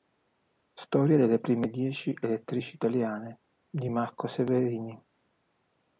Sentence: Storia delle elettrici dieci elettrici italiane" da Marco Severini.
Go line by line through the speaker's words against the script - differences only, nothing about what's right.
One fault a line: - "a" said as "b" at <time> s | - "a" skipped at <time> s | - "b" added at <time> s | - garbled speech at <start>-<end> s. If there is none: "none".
- "elettrici" said as "prime" at 1.4 s
- "da" said as "di" at 3.7 s